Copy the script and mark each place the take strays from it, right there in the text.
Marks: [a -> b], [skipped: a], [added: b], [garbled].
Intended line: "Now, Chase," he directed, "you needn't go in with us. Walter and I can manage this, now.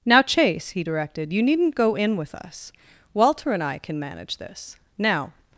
"Now, Chase," he directed, "you needn't go in with us. Walter and I can manage this, now.